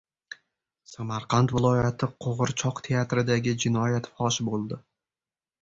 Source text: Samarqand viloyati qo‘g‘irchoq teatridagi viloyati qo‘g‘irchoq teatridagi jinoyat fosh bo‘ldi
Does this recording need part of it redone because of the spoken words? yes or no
yes